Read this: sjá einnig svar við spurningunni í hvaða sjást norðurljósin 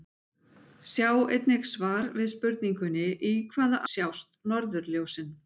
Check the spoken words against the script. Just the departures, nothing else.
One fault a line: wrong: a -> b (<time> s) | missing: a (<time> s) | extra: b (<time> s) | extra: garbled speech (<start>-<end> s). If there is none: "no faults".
no faults